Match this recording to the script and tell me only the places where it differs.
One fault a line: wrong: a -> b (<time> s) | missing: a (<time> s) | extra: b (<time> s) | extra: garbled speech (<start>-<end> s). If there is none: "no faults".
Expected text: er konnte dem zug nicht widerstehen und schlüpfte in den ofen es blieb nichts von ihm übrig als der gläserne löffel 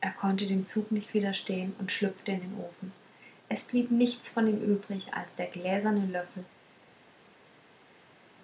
no faults